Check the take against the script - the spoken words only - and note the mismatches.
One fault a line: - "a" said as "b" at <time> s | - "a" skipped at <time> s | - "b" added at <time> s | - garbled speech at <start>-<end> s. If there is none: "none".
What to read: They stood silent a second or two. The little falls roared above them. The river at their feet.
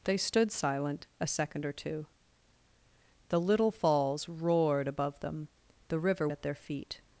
none